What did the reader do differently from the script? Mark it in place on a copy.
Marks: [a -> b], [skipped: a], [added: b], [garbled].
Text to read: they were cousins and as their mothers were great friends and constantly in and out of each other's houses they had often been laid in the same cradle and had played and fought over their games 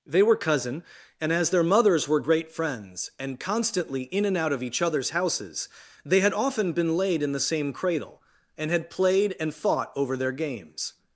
they were [cousins -> cousin] and as their mothers were great friends and constantly in and out of each other's houses they had often been laid in the same cradle and had played and fought over their games